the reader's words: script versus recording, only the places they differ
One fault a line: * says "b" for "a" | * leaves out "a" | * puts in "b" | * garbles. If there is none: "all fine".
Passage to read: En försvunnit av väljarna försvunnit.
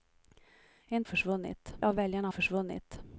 all fine